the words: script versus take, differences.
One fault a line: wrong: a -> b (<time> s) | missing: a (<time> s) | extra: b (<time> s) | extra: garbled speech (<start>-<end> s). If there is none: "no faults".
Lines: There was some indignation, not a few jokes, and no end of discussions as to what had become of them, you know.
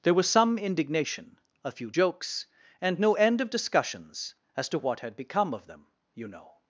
missing: not (1.4 s)